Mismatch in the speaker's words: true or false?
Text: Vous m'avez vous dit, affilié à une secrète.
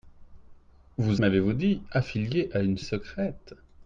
false